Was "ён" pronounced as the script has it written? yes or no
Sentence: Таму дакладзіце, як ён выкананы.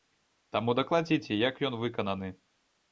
yes